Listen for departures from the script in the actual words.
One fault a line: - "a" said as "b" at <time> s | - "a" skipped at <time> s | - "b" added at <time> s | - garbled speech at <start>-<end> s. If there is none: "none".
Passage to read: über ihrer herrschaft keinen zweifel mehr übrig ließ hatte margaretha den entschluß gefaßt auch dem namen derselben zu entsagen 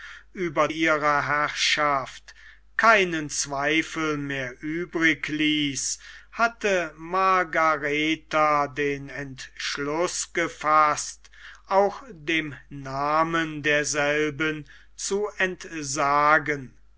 none